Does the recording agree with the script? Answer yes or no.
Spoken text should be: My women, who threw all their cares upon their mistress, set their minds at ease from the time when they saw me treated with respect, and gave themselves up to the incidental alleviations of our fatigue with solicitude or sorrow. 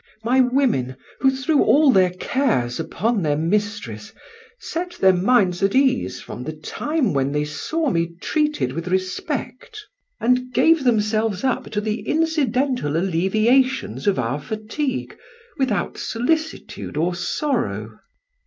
no